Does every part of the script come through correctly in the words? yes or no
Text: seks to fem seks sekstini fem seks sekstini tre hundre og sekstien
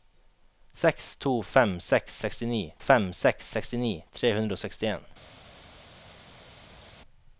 yes